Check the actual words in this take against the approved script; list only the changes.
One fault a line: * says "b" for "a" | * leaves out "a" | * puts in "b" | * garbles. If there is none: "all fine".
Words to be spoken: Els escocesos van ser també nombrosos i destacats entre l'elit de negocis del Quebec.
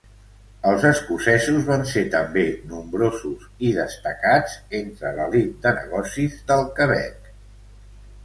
all fine